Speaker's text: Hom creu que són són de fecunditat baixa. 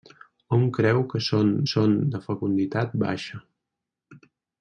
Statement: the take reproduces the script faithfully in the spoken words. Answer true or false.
true